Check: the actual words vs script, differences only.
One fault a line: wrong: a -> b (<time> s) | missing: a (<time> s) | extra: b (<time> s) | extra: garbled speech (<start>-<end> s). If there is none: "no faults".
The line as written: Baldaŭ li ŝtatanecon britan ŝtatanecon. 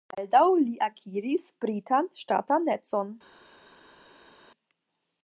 wrong: ŝtatanecon -> akiris (0.8 s)